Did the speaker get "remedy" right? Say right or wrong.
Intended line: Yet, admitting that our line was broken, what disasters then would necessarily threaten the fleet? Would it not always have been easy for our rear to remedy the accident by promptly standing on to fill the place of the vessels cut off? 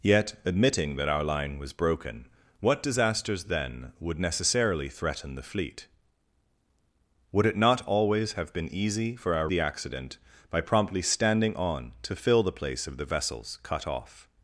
wrong